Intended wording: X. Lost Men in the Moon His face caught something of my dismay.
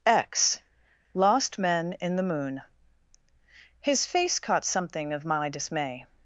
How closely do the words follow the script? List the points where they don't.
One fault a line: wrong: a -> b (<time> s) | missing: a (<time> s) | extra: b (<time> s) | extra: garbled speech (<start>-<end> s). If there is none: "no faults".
no faults